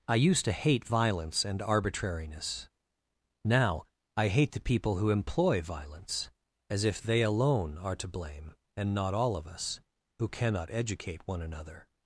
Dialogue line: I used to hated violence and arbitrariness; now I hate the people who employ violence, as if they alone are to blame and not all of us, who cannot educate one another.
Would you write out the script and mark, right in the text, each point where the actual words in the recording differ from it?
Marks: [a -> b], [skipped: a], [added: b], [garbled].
I used to [hated -> hate] violence and arbitrariness; now I hate the people who employ violence, as if they alone are to blame and not all of us, who cannot educate one another.